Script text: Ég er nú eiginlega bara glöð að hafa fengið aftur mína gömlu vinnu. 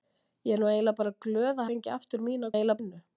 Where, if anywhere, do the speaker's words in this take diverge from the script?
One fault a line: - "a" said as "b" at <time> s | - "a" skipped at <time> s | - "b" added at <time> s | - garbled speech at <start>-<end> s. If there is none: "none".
- "hafa" skipped at 1.7 s
- "gömlu" said as "eiginlega" at 2.5 s